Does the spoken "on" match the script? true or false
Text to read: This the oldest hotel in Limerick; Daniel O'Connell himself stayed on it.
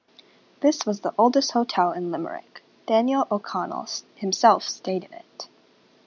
false